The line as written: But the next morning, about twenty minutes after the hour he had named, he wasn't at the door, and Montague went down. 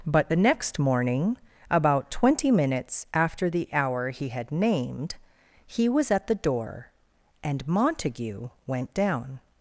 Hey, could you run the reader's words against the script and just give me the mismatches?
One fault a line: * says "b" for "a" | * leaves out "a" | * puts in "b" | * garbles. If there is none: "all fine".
* says "was" for "wasn't"